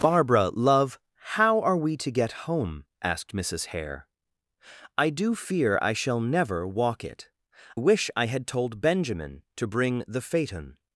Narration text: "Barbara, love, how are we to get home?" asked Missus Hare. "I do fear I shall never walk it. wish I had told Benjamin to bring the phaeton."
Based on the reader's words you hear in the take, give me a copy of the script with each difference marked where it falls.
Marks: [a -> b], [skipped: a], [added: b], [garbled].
"Barbara, love, how are we to get home?" asked Missus Hare. "I do fear I shall never walk it. wish I had told Benjamin to bring the phaeton."